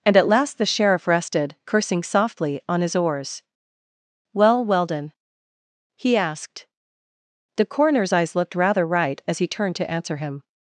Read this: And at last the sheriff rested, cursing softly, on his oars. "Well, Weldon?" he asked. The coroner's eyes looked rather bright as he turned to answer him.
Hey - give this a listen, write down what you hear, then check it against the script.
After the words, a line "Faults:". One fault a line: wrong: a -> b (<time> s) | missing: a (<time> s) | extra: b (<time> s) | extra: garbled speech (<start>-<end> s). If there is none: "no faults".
And at last the sheriff rested, cursing softly, on his oars. "Well, Weldon?" he asked. The coroner's eyes looked rather right as he turned to answer him.
Faults:
wrong: bright -> right (8.9 s)